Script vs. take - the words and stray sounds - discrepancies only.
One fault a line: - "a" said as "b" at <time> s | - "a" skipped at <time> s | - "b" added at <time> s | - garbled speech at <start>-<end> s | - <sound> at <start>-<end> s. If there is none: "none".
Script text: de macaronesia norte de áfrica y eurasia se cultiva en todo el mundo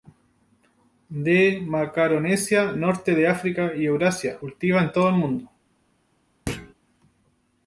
- "se" skipped at 4.4 s
- thud at 6.5-6.7 s